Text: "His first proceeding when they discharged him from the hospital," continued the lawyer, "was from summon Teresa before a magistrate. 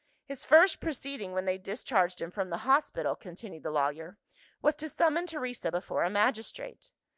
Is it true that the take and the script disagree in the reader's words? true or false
true